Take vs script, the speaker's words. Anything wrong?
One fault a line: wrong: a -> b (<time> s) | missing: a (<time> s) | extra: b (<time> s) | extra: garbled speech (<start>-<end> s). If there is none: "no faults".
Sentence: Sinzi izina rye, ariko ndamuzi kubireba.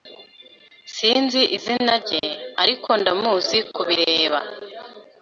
no faults